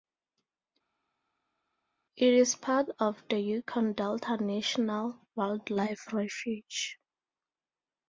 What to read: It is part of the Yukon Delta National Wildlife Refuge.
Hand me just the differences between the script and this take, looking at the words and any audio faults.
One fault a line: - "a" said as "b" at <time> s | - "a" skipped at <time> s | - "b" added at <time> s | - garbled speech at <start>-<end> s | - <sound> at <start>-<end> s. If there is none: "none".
none